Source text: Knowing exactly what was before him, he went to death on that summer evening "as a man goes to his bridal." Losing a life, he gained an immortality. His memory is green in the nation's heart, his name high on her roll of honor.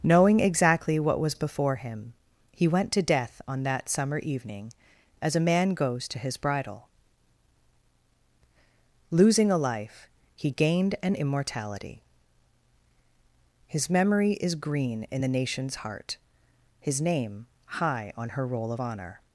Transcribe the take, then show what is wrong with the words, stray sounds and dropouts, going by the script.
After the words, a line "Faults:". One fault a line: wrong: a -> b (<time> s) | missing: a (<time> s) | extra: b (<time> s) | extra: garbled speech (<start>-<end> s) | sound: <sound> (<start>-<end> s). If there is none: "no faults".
Knowing exactly what was before him, he went to death on that summer evening "as a man goes to his bridal." Losing a life, he gained an immortality. His memory is green in the nation's heart, his name high on her roll of honor.
Faults:
no faults